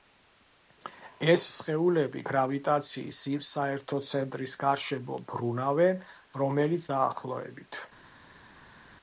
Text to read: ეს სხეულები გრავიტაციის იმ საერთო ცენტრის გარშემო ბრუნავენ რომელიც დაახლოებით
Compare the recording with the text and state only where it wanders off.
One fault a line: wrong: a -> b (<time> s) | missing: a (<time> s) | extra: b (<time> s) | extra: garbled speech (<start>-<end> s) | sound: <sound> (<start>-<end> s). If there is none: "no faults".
no faults